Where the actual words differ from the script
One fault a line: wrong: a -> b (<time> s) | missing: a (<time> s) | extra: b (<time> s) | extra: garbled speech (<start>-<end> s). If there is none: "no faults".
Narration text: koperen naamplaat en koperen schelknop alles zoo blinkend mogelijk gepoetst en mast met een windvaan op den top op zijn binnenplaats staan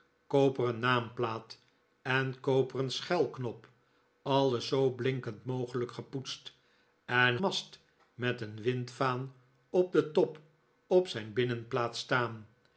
no faults